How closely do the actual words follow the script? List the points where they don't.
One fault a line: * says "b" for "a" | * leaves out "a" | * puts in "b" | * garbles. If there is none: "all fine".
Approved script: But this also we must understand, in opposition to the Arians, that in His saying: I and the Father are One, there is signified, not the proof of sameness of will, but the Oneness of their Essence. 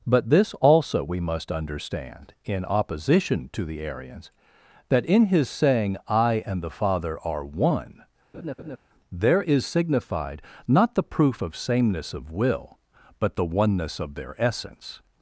all fine